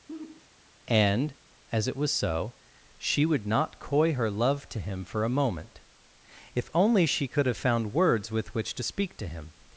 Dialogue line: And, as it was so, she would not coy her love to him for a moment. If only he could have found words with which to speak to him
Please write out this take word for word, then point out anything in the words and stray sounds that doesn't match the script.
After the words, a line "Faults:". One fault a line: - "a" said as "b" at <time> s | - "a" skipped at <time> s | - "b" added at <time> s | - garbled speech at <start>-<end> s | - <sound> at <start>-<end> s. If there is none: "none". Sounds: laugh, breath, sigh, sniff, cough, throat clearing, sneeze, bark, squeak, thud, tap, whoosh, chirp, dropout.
And, as it was so, she would not coy her love to him for a moment. If only she could have found words with which to speak to him
Faults:
- sigh at 0.1-0.5 s
- "he" said as "she" at 7.1 s